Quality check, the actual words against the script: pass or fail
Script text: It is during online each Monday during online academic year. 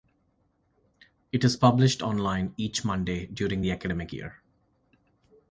fail